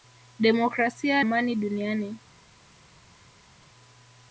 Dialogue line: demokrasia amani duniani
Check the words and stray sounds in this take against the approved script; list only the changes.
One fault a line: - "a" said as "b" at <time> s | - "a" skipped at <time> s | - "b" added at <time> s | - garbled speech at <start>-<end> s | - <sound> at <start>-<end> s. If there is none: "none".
none